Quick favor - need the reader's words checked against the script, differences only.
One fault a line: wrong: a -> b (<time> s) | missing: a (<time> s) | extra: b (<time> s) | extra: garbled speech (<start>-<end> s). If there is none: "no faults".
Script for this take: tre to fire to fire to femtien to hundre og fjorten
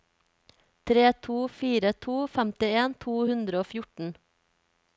missing: fire to (2.1 s)